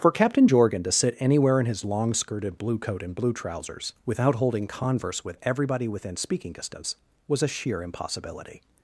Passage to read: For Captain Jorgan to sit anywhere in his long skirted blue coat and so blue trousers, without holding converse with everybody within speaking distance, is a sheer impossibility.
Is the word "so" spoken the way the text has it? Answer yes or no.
no